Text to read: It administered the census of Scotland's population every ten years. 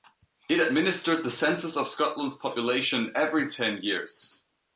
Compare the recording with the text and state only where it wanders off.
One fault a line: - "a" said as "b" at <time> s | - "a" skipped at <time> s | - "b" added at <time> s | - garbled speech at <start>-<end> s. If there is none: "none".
none